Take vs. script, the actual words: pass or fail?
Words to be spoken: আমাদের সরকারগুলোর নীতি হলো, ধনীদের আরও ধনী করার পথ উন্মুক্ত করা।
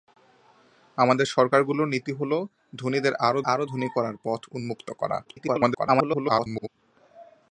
fail